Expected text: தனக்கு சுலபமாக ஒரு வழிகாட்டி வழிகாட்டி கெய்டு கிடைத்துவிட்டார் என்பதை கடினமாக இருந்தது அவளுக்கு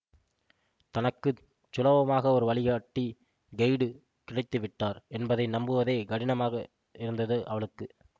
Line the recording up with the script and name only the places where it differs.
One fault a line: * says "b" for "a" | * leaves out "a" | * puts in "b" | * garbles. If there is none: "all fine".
* leaves out "வழிகாட்டி"
* puts in "நம்புவதே"